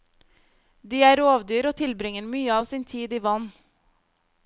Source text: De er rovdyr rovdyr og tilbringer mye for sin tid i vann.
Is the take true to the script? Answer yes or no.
no